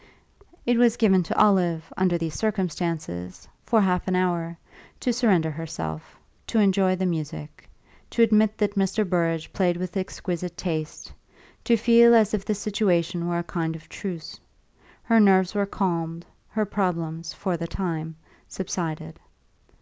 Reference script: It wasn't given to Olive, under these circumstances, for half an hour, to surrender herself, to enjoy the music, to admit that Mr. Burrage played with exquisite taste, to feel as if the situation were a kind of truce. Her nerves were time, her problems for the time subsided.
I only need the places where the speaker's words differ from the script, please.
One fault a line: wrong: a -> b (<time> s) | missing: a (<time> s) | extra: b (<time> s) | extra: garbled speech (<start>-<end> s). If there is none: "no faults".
wrong: wasn't -> was (0.8 s)
wrong: time -> calmed (15.7 s)